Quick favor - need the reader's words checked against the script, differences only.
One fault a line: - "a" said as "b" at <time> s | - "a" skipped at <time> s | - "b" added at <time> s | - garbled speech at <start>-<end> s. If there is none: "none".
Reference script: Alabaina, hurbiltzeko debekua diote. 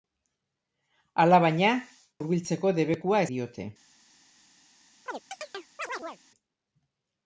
none